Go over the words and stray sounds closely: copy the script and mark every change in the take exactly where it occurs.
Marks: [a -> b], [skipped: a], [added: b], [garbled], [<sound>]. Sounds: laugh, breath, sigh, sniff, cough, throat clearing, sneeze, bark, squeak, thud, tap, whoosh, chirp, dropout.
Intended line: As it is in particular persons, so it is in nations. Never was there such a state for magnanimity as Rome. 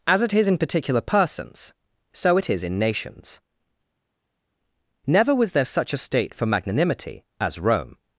As it is in particular persons, so it is in nations. Never was there such a state for magnanimity as Rome.